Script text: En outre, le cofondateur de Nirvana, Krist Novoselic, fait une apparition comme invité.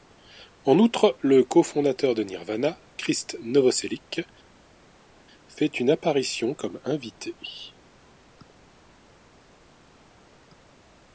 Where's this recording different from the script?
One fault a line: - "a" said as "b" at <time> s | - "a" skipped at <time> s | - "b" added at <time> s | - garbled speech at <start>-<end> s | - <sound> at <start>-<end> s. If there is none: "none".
none